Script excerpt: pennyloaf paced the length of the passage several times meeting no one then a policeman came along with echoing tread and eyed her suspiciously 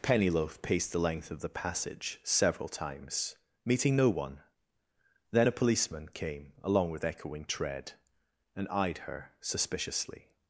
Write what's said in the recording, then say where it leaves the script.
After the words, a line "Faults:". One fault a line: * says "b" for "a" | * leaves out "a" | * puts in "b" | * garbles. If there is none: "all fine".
pennyloaf paced the length of the passage several times meeting no one then a policeman came along with echoing tread and eyed her suspiciously
Faults:
all fine